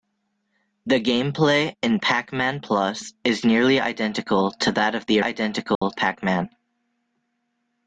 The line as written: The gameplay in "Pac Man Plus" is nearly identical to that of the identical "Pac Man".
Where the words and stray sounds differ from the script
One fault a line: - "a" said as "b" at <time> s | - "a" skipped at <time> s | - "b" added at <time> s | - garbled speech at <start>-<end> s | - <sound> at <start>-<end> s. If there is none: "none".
- dropout at 5.7-5.8 s